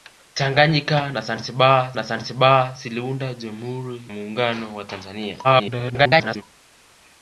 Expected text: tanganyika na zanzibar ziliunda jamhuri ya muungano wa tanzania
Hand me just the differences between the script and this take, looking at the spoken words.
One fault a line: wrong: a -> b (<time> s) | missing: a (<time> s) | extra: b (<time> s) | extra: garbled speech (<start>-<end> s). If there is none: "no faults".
extra: na zanzibar (1.9 s)
missing: ya (4.1 s)
extra: garbled speech (5.4-6.4 s)